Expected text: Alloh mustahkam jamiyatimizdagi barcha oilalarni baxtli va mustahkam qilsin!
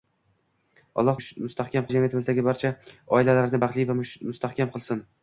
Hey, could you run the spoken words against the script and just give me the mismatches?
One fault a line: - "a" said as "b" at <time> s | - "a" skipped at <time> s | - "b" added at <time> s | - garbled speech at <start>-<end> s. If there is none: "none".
none